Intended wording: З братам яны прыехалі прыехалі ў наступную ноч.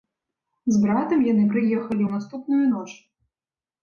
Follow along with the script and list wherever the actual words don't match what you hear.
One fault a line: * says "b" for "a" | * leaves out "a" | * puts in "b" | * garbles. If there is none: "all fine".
* leaves out "прыехалі"